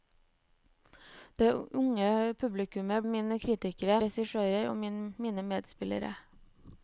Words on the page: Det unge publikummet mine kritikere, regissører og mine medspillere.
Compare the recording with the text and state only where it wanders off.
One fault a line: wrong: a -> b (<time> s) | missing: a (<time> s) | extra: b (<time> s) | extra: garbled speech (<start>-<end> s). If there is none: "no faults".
no faults